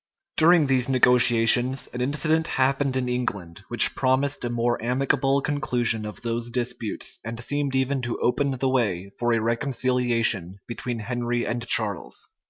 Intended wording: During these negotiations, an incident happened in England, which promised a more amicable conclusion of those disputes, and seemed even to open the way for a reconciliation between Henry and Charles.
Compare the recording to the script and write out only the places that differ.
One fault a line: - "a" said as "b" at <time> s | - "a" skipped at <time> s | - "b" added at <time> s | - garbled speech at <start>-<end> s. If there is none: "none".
none